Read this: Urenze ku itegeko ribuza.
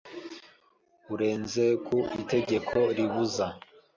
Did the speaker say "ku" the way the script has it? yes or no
yes